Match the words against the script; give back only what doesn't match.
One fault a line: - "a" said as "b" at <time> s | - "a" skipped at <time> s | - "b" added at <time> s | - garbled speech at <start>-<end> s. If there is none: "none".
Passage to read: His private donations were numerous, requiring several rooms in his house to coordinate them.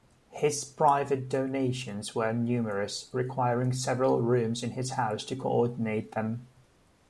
none